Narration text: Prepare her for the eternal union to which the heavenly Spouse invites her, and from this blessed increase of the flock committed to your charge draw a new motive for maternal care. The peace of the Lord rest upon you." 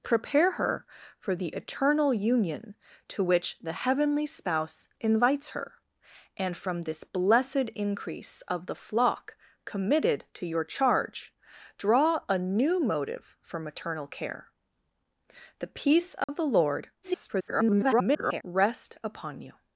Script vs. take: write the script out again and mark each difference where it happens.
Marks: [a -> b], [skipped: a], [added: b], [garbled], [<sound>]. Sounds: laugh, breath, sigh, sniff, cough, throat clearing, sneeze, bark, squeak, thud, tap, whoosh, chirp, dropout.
Prepare her for the eternal union to which the heavenly Spouse invites her, and from this blessed increase of the flock committed to your charge draw a new motive for maternal care. The peace of [dropout] the Lord [garbled] rest upon you."